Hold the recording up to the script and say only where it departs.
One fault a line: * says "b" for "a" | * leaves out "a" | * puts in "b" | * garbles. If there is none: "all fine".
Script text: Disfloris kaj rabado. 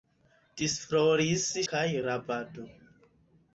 all fine